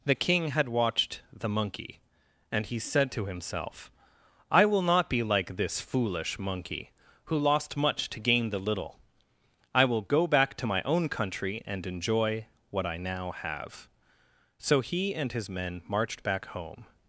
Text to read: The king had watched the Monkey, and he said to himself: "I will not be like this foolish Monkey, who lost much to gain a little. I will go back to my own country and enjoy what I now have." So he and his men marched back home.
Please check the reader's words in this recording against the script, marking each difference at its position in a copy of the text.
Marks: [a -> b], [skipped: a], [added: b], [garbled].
The king had watched the Monkey, and he said to himself: "I will not be like this foolish Monkey, who lost much to gain [a -> the] little. I will go back to my own country and enjoy what I now have." So he and his men marched back home.